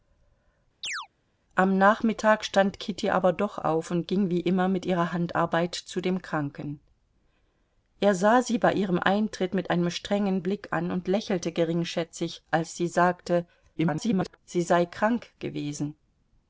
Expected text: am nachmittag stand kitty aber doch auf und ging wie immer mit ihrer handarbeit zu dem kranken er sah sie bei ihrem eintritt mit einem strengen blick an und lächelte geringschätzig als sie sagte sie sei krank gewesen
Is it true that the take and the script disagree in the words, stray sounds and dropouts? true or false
true